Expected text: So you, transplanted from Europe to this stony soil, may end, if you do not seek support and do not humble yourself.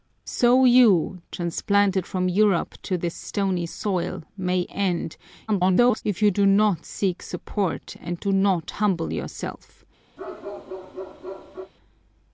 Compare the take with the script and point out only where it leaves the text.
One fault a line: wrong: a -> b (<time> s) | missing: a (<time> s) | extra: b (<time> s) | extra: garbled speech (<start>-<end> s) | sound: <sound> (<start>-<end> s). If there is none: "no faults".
extra: garbled speech (5.5-6.0 s)
sound: bark (10.2-11.7 s)